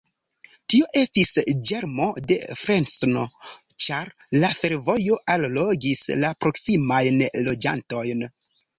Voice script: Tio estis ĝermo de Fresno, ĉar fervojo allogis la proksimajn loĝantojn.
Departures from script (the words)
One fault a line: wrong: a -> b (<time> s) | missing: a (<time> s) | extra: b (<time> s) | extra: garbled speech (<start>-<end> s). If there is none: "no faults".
extra: la (4.4 s)